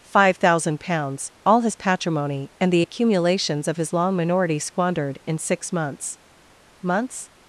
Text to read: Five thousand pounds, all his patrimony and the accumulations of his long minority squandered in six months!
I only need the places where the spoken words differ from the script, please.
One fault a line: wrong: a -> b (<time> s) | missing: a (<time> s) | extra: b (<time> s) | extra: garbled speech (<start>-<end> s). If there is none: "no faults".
extra: months (6.8 s)